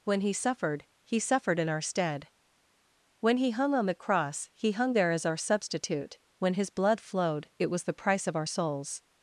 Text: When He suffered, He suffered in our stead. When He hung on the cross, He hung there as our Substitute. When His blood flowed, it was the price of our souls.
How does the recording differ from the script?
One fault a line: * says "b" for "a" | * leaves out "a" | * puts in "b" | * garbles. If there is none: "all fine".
all fine